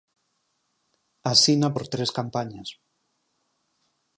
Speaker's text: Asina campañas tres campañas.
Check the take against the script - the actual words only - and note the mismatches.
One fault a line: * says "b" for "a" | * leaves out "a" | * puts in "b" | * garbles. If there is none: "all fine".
* says "por" for "campañas"